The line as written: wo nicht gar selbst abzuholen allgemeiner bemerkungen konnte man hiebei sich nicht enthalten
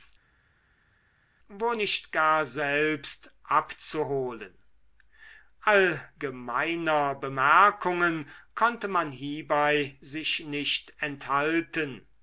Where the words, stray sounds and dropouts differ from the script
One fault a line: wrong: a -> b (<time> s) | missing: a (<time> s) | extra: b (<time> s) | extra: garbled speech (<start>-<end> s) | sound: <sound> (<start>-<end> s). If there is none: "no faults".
no faults